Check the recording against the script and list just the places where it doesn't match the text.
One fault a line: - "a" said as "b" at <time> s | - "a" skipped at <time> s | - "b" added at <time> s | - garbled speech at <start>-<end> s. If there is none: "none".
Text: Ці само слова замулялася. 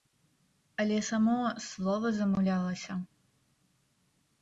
- "Ці" said as "Але" at 0.8 s